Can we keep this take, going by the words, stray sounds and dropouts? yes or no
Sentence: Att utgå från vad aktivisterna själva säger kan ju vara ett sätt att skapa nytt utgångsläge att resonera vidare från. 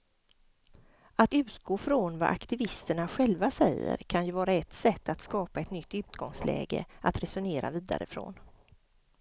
no